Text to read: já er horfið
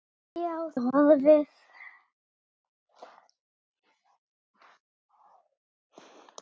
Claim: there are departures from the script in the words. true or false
false